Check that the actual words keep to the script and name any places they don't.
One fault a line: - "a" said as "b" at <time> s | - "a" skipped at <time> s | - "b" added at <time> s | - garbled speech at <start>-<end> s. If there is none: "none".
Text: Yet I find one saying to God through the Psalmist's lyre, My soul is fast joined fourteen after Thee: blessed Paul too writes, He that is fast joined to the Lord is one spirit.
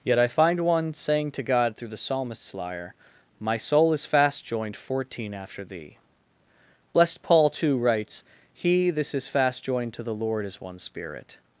- "that" said as "this" at 8.9 s